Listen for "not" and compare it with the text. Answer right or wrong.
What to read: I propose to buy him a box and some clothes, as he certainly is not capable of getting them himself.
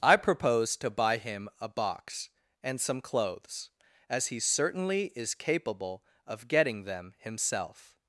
wrong